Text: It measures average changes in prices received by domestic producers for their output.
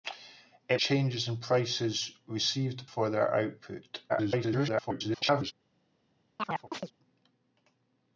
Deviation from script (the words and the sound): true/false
true